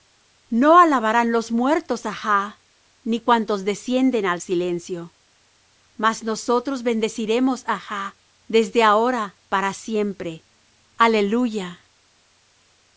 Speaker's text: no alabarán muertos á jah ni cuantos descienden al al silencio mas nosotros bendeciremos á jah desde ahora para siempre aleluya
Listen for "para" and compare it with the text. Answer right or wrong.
right